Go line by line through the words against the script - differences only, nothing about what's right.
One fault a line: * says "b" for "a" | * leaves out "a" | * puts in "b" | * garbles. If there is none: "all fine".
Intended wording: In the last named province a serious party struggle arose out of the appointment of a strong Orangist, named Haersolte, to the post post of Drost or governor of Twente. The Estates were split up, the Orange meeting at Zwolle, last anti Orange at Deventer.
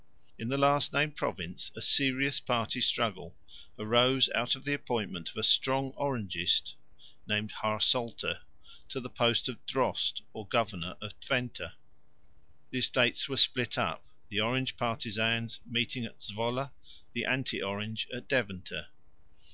* leaves out "post"
* puts in "partisans"
* says "the" for "last"